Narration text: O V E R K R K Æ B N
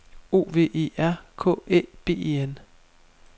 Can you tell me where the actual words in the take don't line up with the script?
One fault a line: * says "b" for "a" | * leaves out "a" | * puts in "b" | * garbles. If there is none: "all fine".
* leaves out "R K"
* puts in "E"